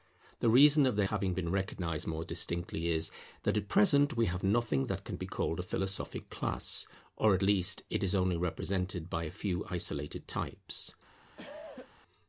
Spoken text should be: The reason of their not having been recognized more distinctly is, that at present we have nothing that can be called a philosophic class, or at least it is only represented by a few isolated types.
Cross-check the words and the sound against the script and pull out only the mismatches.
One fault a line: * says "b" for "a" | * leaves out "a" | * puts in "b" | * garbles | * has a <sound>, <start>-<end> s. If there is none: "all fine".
* leaves out "not"
* has a cough, 11.4-11.9 s